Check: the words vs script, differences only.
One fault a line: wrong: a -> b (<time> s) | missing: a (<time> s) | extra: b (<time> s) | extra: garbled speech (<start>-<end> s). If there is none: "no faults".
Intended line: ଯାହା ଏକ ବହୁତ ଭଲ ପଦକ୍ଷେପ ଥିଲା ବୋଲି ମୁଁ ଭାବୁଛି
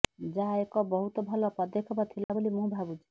no faults